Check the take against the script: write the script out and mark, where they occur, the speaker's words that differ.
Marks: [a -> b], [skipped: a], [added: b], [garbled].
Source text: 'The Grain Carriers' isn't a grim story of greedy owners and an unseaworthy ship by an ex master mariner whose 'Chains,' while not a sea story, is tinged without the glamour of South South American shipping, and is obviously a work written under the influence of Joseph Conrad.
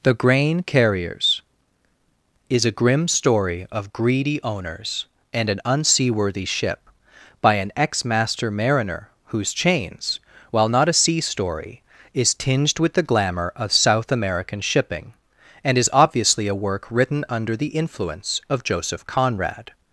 'The Grain Carriers' [isn't -> is] a grim story of greedy owners and an unseaworthy ship by an ex master mariner whose 'Chains,' while not a sea story, is tinged [without -> with] the glamour of South [skipped: South] American shipping, and is obviously a work written under the influence of Joseph Conrad.